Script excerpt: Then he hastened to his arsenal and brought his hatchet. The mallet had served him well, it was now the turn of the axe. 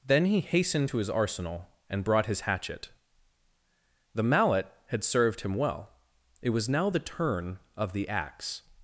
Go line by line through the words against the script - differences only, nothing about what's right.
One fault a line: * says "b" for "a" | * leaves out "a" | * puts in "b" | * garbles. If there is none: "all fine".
all fine